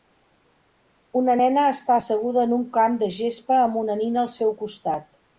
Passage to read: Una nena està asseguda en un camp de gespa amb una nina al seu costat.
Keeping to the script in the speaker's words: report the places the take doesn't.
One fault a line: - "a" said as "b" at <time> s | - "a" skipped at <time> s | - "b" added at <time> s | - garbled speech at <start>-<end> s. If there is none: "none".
none